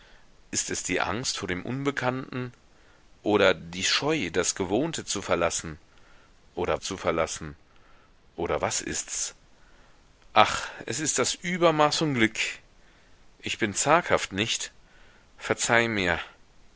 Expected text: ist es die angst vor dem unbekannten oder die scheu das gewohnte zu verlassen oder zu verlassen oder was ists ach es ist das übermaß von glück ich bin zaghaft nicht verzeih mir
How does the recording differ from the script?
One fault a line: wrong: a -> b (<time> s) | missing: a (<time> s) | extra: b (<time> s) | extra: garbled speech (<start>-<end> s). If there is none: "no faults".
no faults